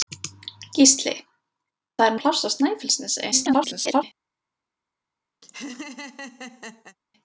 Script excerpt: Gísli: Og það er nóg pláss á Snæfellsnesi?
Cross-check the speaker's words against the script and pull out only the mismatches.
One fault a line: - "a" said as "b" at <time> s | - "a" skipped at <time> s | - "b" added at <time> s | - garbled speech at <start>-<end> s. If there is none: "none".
- "Og" skipped at 1.1 s
- "nóg" skipped at 2.2 s
- garbled speech at 3.3-4.0 s